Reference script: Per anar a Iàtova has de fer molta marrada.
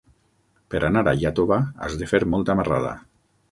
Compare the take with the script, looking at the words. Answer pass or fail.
pass